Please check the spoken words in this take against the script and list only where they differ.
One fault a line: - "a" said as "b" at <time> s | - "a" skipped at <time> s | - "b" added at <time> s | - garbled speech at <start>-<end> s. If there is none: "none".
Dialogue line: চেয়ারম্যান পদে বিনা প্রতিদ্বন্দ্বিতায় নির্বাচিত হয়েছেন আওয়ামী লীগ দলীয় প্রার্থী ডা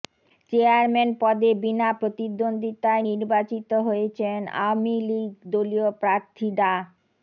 none